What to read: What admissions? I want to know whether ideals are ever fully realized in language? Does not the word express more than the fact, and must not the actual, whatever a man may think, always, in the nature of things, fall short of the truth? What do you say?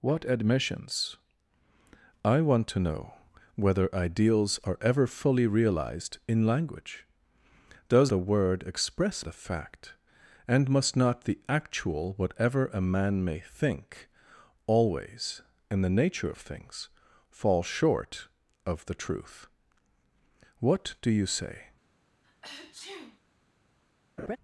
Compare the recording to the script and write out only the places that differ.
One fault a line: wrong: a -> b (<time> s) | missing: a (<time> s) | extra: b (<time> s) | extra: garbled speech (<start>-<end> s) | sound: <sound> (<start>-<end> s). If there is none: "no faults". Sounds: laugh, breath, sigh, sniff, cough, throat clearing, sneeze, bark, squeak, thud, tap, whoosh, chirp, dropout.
missing: not (8.1 s)
missing: more than (9.3 s)
sound: sneeze (22.2-23.2 s)
sound: laugh (24.2-24.4 s)